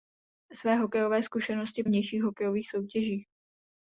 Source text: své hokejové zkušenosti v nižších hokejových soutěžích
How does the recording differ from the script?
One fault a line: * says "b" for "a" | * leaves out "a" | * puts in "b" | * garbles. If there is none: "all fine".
all fine